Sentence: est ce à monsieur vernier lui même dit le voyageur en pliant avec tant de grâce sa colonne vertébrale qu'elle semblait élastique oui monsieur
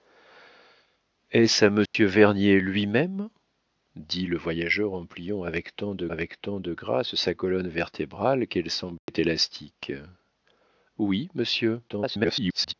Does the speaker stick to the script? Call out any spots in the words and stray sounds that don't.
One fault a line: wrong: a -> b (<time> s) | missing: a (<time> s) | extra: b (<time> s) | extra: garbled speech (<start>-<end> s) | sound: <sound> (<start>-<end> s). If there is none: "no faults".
sound: dropout (1.9-1.9 s)
extra: avec tant de (6.1 s)
sound: dropout (9.0-9.1 s)
extra: garbled speech (11.9-12.7 s)